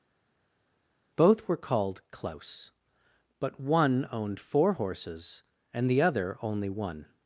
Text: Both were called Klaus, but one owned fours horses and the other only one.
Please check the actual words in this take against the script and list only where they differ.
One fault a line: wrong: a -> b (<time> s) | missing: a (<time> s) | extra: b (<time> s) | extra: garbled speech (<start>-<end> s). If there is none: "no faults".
wrong: fours -> four (4.4 s)